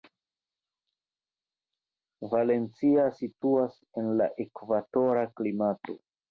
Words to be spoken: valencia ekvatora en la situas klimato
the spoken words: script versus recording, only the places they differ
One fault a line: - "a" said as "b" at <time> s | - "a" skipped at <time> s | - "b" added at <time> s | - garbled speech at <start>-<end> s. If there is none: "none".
- "ekvatora" said as "situas" at 3.2 s
- "situas" said as "ekvatora" at 4.5 s